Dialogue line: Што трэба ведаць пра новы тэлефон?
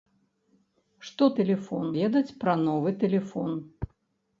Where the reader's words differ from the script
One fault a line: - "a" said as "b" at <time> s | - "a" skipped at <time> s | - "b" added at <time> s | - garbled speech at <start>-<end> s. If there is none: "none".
- "трэба" said as "тэлефон" at 1.4 s